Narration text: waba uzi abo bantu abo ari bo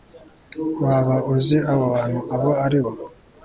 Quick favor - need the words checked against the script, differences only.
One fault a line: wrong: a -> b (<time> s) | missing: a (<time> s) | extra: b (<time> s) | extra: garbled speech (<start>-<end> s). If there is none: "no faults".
no faults